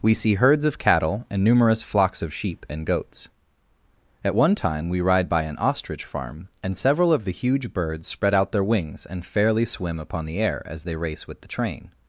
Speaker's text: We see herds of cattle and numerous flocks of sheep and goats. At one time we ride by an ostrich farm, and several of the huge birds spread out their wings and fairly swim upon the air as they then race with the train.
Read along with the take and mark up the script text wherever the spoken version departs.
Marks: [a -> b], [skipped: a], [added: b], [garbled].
We see herds of cattle and numerous flocks of sheep and goats. At one time we ride by an ostrich farm, and several of the huge birds spread out their wings and fairly swim upon the air as they [skipped: then] race with the train.